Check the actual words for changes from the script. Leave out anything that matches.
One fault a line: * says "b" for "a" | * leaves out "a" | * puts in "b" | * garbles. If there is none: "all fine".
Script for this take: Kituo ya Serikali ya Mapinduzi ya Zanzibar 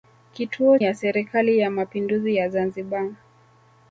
all fine